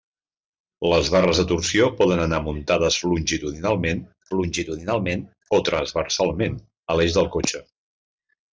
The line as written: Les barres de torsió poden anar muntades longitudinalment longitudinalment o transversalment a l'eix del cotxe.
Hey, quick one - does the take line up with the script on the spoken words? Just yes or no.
yes